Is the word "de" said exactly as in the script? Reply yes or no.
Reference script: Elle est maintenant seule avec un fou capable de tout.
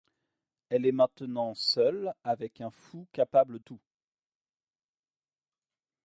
no